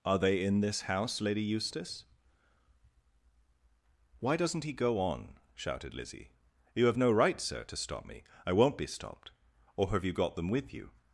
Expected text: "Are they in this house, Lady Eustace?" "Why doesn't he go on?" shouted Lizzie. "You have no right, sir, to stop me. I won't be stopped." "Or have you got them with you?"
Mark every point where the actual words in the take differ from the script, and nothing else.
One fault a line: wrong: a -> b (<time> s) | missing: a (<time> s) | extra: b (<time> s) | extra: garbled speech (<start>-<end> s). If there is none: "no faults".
no faults